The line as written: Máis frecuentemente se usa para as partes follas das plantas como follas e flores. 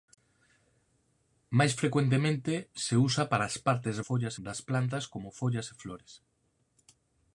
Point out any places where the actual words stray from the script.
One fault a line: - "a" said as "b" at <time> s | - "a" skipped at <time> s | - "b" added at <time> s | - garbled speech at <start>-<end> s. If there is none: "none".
none